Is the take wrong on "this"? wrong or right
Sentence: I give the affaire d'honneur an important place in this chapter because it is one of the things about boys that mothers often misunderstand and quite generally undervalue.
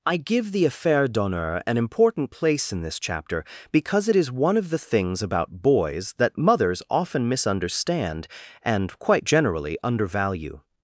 right